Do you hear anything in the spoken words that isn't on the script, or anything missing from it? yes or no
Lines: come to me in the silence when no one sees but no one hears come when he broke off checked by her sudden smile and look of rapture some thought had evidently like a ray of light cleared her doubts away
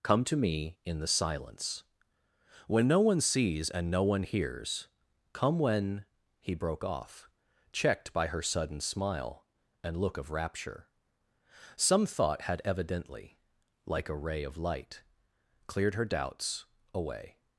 yes